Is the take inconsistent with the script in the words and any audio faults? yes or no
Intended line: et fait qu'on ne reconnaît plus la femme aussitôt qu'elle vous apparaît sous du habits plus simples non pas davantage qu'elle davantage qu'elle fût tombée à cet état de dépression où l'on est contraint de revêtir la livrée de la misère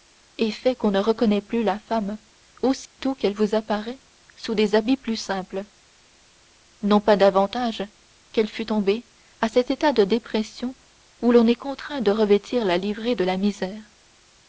yes